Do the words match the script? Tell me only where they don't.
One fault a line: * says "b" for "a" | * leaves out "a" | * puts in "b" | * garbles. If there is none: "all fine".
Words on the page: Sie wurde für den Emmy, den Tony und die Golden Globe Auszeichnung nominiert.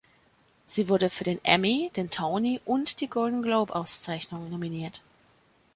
all fine